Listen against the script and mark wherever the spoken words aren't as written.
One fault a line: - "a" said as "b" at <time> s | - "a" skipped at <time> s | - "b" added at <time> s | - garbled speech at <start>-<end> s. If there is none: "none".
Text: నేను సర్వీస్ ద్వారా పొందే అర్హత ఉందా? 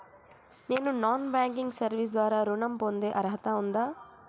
- "నాన్ బ్యాంకింగ్" added at 1.0 s
- "ఋణం" added at 2.4 s